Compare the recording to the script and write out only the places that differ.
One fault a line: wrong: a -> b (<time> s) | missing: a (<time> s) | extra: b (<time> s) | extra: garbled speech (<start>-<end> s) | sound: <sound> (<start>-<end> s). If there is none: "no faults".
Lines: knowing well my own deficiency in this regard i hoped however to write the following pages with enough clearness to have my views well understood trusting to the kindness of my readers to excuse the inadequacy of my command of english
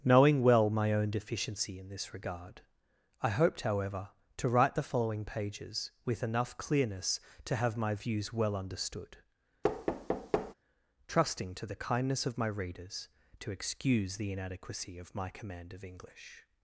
sound: thud (9.6-10.5 s)